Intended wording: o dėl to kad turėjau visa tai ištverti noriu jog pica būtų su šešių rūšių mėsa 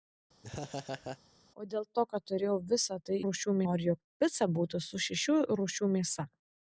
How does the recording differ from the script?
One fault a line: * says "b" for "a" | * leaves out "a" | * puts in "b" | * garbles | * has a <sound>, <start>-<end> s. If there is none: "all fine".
* has a laugh, 0.4-1.2 s
* says "rūšių" for "ištverti"